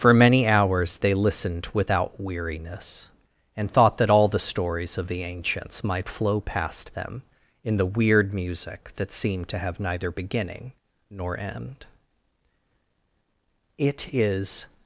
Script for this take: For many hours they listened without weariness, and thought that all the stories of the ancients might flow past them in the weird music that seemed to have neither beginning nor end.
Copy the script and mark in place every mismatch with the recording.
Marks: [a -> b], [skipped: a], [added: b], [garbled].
For many hours they listened without weariness, and thought that all the stories of the ancients might flow past them in the weird music that seemed to have neither beginning nor end. [added: It is]